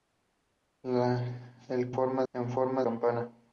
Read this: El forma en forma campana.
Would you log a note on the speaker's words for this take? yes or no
no